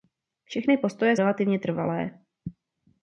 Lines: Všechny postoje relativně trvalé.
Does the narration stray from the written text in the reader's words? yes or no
no